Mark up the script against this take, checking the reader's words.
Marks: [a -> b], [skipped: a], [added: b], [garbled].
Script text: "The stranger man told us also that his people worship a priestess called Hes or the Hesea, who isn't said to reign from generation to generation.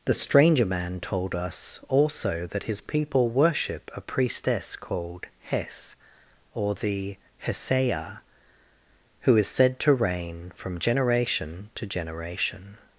"The stranger man told us also that his people worship a priestess called Hes or the Hesea, who [isn't -> is] said to reign from generation to generation.